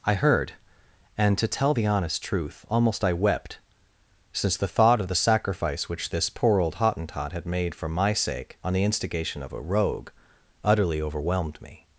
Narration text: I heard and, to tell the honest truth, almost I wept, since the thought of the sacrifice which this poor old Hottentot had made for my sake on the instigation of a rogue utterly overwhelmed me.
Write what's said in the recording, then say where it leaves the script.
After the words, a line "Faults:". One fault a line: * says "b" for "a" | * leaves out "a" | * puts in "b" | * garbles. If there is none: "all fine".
I heard and, to tell the honest truth, almost I wept, since the thought of the sacrifice which this poor old Hottentot had made for my sake on the instigation of a rogue utterly overwhelmed me.
Faults:
all fine